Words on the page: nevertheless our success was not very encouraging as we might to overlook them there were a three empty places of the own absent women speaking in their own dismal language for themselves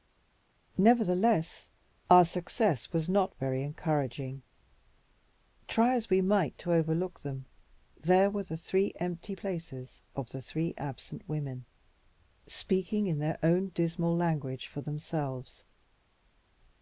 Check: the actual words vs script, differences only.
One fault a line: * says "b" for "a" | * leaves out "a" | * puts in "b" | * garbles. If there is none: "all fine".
* puts in "try"
* says "the" for "a"
* says "three" for "own"